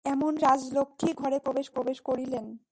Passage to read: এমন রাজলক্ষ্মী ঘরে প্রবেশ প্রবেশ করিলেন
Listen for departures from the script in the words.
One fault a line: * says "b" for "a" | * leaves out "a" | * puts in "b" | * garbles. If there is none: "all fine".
all fine